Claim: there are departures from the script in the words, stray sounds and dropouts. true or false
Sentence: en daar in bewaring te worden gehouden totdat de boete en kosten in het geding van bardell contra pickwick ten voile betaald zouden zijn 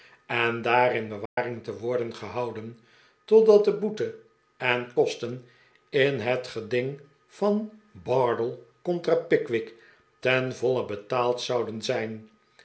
true